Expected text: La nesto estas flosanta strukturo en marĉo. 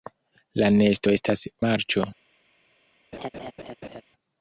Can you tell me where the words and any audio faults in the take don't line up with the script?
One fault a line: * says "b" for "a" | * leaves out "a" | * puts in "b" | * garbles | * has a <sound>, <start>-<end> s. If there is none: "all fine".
* leaves out "flosanta strukturo en"
* has a laugh, 3.1-4.0 s